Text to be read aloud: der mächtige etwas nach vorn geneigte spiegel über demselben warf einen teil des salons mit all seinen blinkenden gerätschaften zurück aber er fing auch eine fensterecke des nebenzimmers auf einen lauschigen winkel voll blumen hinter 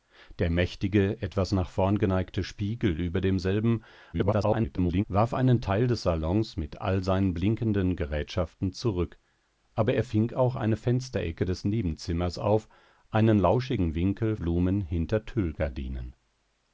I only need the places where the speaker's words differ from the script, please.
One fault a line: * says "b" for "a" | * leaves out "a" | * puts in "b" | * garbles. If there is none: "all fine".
* garbles
* leaves out "voll"